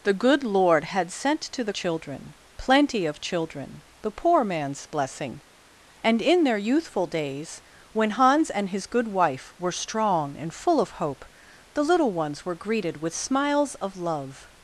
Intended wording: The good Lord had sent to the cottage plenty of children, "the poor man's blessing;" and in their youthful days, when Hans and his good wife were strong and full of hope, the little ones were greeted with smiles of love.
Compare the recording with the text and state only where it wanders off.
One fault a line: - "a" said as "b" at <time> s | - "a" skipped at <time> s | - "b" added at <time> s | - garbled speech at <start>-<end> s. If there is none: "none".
- "cottage" said as "children" at 1.7 s